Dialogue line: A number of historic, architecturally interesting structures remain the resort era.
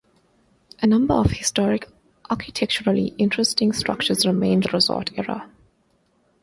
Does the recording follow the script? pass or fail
pass